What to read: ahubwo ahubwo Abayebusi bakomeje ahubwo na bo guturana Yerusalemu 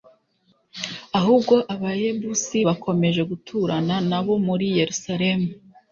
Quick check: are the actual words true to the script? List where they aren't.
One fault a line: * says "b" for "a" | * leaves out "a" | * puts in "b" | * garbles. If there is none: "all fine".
* leaves out "ahubwo"
* says "guturana" for "ahubwo"
* says "muri" for "guturana"